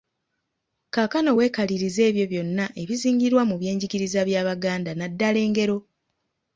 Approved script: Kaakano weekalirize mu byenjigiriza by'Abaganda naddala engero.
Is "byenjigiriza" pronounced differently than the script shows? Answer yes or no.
no